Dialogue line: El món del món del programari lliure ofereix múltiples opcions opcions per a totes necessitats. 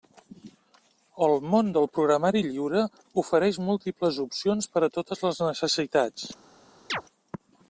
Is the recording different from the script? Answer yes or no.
yes